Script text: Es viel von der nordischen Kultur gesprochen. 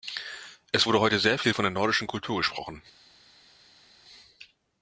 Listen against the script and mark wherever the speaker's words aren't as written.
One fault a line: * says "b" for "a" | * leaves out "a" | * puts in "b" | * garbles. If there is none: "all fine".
* puts in "wurde heute sehr"